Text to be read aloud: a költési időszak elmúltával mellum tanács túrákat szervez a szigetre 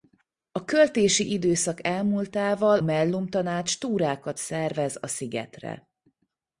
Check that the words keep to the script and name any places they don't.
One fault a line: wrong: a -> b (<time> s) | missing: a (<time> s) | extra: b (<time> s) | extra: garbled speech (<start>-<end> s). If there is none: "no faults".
no faults